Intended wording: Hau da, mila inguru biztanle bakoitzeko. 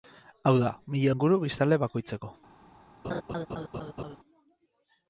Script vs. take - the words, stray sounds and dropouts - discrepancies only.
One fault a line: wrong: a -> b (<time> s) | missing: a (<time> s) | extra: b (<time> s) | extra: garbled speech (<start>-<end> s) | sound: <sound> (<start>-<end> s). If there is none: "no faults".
sound: laugh (3.0-4.2 s)